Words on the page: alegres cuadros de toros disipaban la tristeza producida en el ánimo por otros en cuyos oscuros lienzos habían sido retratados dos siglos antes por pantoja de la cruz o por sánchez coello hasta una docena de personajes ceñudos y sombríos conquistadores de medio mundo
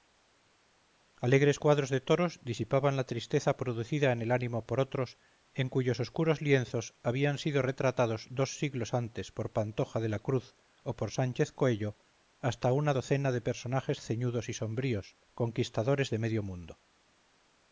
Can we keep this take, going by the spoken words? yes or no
yes